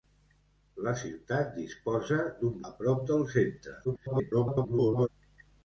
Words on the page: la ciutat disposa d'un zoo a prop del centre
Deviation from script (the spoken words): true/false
true